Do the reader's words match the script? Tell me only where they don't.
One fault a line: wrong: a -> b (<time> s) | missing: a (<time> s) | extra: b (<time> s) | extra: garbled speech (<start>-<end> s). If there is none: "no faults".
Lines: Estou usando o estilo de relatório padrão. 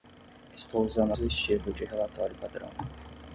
no faults